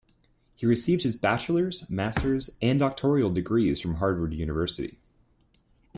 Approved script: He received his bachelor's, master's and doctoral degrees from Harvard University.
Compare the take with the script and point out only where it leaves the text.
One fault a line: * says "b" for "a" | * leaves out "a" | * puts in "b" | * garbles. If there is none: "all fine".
all fine